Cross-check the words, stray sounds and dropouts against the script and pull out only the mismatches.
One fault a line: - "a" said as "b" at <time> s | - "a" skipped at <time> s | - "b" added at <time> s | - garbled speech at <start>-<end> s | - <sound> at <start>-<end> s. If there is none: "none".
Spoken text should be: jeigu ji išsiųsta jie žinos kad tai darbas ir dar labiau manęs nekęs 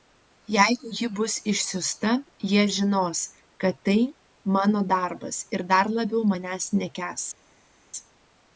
- "bus" added at 1.2 s
- "mano" added at 4.6 s